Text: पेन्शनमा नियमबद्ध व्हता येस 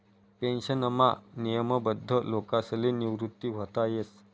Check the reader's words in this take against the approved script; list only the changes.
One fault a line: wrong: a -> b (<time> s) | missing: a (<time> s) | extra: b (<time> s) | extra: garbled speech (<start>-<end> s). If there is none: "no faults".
extra: लोकसले निवृत (2.3 s)